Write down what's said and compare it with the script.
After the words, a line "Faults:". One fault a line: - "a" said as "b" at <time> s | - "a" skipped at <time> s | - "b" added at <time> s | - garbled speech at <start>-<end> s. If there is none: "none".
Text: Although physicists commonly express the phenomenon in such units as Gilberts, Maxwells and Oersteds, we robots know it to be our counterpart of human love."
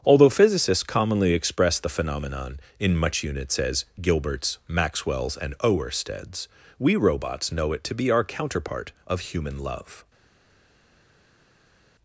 Although physicists commonly express the phenomenon in much units as Gilberts, Maxwells and Oersteds, we robots know it to be our counterpart of human love."
Faults:
- "such" said as "much" at 3.0 s